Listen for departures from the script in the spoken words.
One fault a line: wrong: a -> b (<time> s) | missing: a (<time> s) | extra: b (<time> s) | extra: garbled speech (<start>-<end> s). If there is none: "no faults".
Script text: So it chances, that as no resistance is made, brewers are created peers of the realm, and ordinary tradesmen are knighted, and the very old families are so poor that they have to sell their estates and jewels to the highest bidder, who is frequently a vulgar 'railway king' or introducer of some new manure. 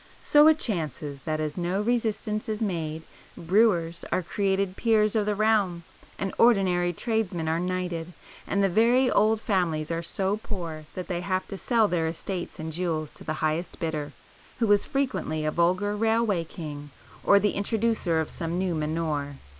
extra: the (17.4 s)